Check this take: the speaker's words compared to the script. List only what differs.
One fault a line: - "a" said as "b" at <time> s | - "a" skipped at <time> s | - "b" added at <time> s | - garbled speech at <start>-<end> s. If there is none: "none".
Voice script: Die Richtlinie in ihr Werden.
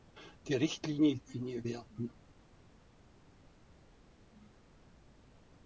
none